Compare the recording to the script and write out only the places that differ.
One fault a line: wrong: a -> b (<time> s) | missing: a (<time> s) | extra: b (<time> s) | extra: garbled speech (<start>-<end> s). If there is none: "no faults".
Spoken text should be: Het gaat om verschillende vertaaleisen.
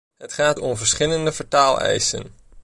no faults